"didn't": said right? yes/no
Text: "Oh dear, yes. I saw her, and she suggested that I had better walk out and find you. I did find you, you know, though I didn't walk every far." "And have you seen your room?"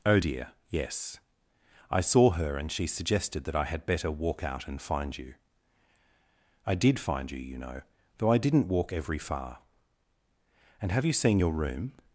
yes